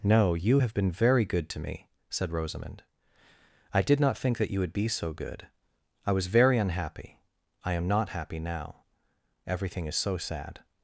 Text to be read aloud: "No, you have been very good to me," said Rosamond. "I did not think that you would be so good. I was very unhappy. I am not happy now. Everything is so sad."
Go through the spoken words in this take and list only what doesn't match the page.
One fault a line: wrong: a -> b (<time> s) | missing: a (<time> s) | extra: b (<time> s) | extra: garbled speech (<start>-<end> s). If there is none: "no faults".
no faults